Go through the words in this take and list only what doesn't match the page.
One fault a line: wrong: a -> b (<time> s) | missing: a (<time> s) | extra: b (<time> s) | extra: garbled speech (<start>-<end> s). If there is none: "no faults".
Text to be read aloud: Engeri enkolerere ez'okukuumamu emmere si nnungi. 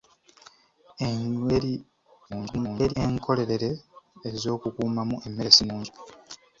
extra: garbled speech (2.3-2.9 s)